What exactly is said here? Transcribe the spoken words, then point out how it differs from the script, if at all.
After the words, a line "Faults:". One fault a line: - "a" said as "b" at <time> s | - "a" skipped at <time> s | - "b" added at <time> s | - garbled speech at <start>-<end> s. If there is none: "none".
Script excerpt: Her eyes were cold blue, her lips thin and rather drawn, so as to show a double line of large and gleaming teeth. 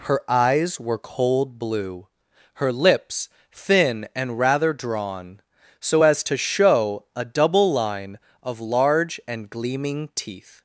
Her eyes were cold blue, her lips thin and rather drawn, so as to show a double line of large and gleaming teeth.
Faults:
none